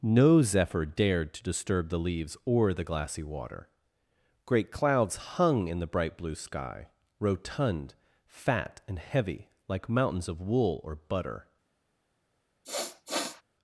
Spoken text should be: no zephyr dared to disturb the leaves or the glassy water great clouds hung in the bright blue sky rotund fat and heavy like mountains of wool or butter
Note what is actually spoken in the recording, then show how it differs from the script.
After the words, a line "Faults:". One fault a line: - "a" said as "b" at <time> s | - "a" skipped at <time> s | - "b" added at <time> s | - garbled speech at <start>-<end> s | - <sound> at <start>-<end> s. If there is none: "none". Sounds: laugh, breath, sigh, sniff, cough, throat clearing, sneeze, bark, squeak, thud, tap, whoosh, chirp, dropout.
no zephyr dared to disturb the leaves or the glassy water great clouds hung in the bright blue sky rotund fat and heavy like mountains of wool or butter
Faults:
- sniff at 12.6-13.4 s